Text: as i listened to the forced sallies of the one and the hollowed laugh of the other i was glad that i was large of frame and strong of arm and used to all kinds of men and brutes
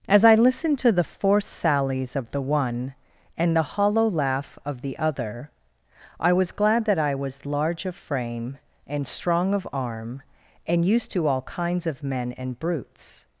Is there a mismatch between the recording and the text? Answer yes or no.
yes